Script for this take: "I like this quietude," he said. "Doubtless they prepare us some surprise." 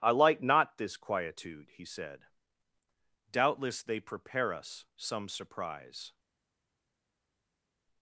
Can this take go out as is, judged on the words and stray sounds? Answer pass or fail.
fail